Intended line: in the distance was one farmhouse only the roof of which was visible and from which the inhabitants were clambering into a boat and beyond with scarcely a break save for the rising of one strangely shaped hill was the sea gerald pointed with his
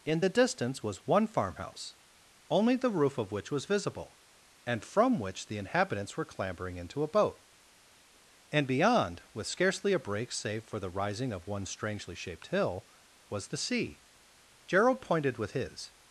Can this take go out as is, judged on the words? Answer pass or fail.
pass